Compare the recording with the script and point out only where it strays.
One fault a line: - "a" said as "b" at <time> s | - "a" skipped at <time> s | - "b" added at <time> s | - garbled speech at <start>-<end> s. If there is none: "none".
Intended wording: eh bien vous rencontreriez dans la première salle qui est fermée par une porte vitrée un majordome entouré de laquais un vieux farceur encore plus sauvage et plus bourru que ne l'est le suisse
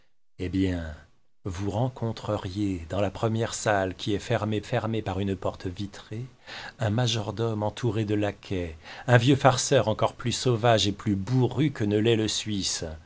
- "fermée" added at 4.6 s